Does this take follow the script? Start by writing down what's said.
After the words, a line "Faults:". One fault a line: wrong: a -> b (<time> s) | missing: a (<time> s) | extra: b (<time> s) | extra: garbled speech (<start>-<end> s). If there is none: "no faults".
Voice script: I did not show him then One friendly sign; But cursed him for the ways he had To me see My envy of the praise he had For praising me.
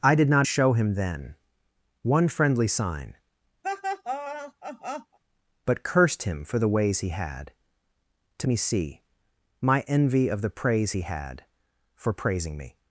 I did not show him then One friendly sign; But cursed him for the ways he had To me see My envy of the praise he had For praising me.
Faults:
no faults